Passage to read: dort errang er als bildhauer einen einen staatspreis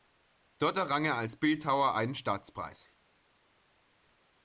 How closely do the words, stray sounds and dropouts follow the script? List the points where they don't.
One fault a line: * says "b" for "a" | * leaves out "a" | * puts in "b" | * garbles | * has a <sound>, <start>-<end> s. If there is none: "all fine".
* leaves out "einen"